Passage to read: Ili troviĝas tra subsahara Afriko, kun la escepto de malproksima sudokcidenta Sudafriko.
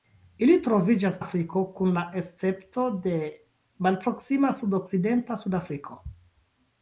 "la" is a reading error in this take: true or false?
false